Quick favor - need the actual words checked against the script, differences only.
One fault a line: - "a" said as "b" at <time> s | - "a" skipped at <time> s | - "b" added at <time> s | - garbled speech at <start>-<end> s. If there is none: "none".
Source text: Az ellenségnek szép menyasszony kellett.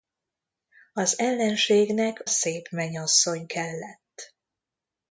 none